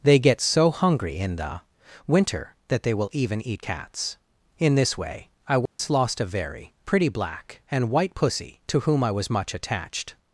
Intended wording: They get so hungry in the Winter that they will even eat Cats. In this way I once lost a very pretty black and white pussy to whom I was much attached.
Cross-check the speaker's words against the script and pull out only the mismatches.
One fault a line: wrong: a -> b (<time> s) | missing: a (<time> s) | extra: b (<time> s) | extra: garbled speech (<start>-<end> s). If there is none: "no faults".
no faults